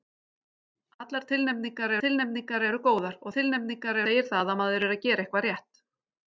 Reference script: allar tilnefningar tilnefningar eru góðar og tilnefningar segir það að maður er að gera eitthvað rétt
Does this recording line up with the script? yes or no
yes